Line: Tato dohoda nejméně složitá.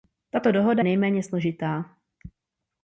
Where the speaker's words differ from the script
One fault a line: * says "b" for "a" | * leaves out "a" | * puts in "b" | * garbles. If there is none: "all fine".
all fine